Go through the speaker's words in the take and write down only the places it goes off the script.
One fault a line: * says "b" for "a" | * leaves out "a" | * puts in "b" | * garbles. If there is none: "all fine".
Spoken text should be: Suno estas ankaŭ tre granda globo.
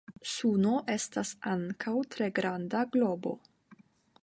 all fine